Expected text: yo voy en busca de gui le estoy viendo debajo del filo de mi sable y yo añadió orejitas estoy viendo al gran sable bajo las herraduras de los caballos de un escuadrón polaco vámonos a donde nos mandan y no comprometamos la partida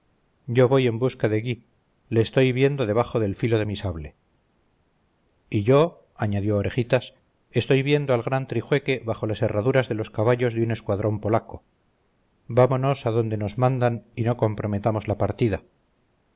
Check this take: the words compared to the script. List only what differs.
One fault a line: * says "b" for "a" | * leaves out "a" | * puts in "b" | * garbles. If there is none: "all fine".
* says "trijueque" for "sable"